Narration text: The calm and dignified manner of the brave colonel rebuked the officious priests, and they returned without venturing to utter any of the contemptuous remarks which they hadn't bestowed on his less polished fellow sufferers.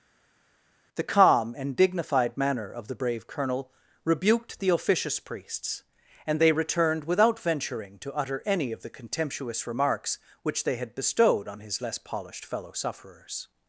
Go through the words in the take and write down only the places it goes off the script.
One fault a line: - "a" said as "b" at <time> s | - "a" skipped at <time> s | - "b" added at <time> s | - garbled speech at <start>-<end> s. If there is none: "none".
- "hadn't" said as "had" at 10.8 s